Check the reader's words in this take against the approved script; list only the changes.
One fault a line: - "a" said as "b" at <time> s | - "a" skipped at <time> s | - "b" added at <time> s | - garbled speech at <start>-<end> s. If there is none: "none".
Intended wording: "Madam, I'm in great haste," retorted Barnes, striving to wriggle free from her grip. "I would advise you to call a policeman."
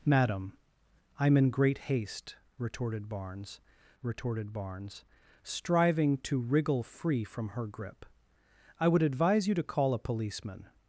- "retorted Barnes" added at 4.0 s